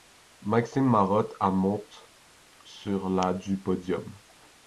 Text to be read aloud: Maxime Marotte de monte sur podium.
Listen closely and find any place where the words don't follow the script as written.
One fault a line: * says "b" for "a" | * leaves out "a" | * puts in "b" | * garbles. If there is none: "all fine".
* says "à" for "de"
* puts in "la du"